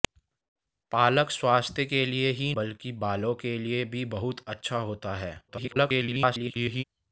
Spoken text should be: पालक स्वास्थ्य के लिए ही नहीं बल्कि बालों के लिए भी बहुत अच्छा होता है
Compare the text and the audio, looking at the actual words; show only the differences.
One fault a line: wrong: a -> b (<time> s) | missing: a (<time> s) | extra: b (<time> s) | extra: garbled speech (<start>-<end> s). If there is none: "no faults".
missing: नहीं (2.5 s)
extra: garbled speech (5.5-6.8 s)